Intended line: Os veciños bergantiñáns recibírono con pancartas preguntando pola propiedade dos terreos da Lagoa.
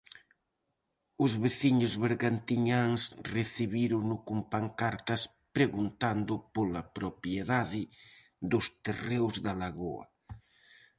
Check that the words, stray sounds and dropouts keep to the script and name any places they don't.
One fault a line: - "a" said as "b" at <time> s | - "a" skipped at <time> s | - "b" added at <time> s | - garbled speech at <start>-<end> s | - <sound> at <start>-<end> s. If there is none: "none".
none